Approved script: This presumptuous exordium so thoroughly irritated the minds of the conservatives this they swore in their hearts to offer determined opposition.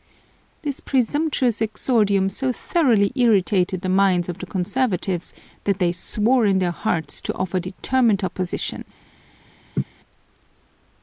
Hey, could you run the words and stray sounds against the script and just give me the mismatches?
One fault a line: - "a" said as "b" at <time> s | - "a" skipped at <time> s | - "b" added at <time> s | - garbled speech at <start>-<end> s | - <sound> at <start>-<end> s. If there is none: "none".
- "this" said as "that" at 5.7 s
- laugh at 9.7-9.8 s